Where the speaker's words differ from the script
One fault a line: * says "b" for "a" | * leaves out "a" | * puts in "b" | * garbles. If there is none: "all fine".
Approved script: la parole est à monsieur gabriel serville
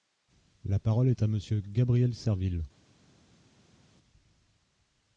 all fine